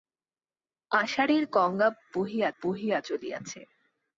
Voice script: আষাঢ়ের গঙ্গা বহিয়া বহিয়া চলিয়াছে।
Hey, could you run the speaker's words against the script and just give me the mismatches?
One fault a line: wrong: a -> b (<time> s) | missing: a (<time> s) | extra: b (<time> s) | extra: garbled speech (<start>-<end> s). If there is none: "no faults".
no faults